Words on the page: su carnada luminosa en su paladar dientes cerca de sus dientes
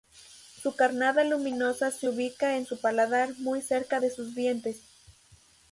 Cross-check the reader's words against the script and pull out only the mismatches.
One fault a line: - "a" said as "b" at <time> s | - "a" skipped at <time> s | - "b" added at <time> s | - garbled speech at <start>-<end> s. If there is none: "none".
- "se ubica" added at 1.9 s
- "dientes" said as "muy" at 3.4 s